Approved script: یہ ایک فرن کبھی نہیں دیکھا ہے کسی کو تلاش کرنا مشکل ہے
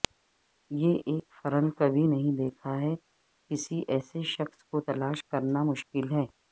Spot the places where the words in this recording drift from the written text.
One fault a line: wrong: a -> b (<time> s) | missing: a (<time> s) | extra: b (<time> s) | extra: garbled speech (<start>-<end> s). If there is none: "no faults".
extra: ایسے شخص (3.9 s)